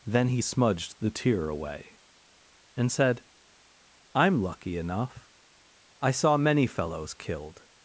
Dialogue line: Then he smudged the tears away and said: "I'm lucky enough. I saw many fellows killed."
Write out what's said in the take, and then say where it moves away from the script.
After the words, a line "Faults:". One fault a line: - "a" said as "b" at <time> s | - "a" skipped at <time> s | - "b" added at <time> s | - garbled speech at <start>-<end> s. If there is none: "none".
Then he smudged the tear away and said: "I'm lucky enough. I saw many fellows killed."
Faults:
- "tears" said as "tear" at 1.1 s